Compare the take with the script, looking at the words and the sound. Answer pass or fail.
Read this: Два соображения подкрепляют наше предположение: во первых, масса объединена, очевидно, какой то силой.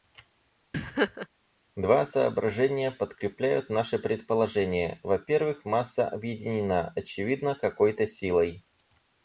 fail